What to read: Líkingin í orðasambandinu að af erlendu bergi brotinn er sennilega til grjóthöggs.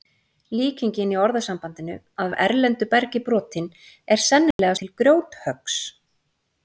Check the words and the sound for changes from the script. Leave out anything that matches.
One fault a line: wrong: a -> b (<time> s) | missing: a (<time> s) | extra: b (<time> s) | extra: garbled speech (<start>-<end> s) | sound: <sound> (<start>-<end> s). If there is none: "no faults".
sound: dropout (4.5-4.6 s)